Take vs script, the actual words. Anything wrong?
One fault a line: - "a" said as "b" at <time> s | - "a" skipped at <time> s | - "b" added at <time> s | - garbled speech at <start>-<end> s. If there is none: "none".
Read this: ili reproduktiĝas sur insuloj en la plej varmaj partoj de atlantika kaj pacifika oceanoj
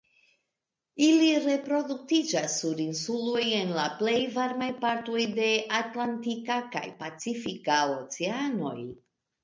none